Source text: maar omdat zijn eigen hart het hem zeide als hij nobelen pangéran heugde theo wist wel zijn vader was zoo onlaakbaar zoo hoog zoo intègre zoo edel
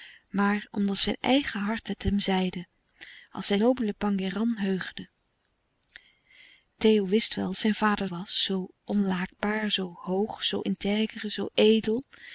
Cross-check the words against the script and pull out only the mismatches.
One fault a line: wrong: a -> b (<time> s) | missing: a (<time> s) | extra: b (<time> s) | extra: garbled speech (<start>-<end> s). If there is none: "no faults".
no faults